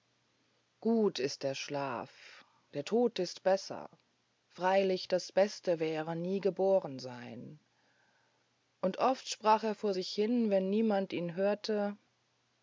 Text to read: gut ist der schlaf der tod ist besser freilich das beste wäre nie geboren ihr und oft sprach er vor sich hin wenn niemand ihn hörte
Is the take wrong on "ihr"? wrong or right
wrong